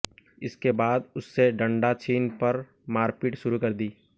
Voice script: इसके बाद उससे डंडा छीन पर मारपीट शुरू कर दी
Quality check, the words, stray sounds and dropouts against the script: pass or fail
pass